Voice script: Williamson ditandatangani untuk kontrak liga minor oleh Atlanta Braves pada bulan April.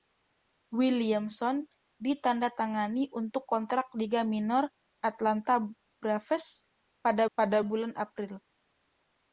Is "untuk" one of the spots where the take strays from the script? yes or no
no